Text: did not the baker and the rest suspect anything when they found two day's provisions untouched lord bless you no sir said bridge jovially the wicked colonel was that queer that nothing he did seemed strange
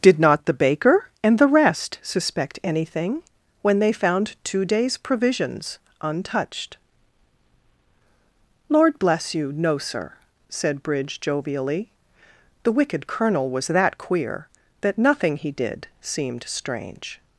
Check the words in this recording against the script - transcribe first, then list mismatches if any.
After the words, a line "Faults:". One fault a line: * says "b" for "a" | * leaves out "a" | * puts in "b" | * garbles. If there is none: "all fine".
did not the baker and the rest suspect anything when they found two day's provisions untouched lord bless you no sir said bridge jovially the wicked colonel was that queer that nothing he did seemed strange
Faults:
all fine